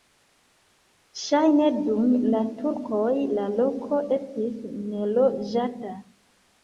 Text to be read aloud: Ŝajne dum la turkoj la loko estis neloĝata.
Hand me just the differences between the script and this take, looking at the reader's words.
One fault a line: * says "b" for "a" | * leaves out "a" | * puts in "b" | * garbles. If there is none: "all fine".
all fine